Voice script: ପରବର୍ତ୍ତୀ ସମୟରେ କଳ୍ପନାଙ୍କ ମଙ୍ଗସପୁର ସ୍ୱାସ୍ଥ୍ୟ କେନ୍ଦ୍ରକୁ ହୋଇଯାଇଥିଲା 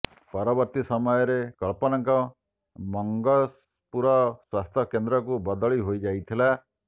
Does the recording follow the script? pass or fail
fail